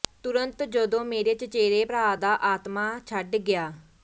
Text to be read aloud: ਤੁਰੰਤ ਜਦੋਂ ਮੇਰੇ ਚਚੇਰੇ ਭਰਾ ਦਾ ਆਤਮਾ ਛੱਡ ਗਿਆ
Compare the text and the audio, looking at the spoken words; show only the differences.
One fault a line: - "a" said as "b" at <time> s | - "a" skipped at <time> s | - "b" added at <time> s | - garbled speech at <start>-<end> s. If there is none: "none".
none